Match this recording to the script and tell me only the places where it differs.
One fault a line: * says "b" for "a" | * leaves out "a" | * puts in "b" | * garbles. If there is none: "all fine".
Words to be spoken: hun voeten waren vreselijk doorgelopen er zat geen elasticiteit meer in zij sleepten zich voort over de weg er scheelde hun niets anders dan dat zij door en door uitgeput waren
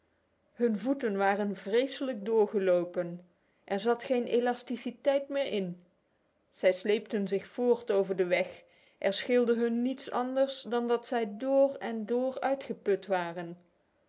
all fine